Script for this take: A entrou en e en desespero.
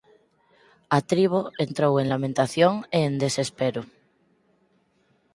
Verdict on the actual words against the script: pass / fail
fail